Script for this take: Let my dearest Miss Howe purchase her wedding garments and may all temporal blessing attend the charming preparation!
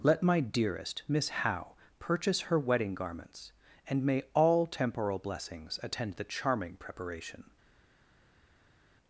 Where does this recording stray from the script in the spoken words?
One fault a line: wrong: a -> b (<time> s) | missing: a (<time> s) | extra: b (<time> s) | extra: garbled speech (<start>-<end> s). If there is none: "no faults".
wrong: blessing -> blessings (5.2 s)